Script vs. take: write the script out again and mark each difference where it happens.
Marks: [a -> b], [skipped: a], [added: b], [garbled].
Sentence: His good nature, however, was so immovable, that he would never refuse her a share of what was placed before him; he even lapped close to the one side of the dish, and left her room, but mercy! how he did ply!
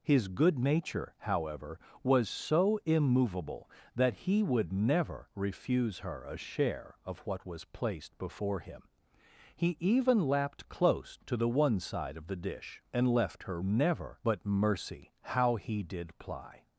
His good nature, however, was so immovable, that he would never refuse her a share of what was placed before him; he even lapped close to the one side of the dish, and left her [room, -> never] but mercy! how he did ply!